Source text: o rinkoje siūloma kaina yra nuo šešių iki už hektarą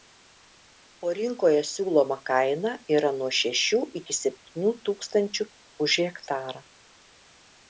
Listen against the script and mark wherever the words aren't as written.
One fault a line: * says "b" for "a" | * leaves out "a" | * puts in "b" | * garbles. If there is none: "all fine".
* puts in "septynių tūkstančių"